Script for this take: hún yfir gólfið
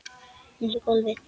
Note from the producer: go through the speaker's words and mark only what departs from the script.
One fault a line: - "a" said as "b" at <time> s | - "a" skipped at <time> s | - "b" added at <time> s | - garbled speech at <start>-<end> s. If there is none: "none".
none